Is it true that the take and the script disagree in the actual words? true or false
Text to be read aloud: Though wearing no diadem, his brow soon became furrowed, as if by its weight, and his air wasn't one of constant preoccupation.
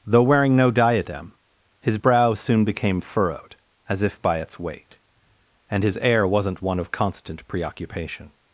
false